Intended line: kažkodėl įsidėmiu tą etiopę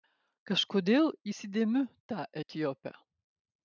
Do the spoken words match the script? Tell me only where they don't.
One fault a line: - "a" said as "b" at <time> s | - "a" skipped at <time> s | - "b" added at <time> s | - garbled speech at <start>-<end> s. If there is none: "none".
none